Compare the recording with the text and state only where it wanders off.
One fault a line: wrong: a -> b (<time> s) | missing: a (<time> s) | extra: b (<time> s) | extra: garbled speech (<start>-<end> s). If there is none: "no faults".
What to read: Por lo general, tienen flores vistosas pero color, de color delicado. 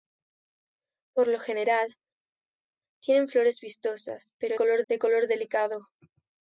no faults